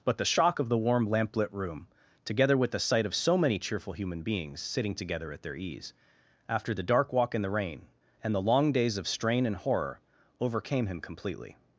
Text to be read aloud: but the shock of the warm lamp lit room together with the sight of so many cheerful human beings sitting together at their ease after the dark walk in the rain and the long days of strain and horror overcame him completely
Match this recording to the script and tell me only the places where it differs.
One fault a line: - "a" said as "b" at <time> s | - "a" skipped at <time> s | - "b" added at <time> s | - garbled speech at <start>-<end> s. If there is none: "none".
none